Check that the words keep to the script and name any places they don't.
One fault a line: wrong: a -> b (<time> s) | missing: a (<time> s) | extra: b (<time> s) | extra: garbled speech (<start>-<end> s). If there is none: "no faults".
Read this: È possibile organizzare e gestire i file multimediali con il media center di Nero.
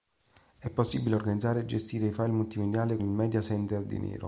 missing: con (3.0 s)